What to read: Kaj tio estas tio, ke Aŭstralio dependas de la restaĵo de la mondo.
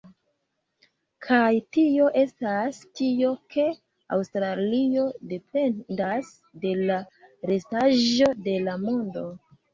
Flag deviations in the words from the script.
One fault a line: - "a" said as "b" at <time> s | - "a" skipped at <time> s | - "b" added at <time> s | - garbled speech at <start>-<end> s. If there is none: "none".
none